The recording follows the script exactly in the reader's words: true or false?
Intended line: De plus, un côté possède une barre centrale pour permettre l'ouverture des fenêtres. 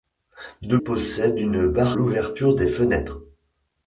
false